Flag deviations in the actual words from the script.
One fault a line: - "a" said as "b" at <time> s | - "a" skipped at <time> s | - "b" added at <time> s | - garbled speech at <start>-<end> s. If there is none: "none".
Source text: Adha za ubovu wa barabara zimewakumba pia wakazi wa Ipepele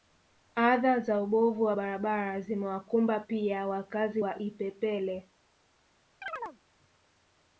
none